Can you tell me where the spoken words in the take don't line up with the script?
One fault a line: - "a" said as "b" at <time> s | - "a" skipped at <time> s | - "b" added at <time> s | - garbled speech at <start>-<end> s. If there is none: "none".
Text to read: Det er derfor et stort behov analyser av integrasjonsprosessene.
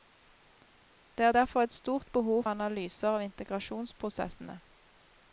none